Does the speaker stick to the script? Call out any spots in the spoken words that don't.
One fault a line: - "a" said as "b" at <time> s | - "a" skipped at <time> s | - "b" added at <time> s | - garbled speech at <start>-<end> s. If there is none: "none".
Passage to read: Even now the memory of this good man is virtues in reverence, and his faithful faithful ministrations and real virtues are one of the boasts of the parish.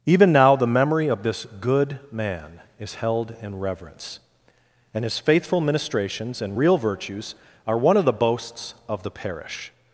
- "virtues" said as "held" at 3.0 s
- "faithful" skipped at 5.6 s